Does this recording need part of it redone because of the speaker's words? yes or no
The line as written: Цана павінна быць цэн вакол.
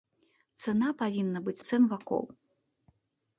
no